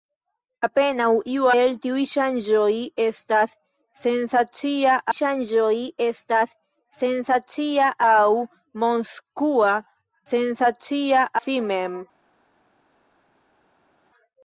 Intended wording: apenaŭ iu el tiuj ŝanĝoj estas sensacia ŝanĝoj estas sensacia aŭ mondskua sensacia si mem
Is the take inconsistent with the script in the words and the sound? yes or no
no